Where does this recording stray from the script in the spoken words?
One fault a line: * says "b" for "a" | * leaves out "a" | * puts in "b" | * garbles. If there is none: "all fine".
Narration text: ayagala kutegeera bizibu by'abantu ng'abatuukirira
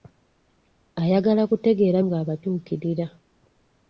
* leaves out "bizibu by'abantu"